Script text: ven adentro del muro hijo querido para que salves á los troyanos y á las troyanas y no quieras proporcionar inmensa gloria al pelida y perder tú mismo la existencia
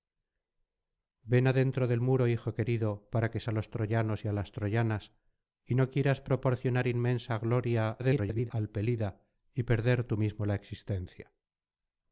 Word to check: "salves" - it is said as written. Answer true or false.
false